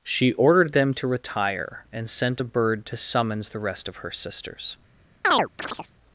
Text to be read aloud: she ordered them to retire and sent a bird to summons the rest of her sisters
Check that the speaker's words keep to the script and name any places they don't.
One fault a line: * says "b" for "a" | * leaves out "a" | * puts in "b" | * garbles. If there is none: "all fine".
all fine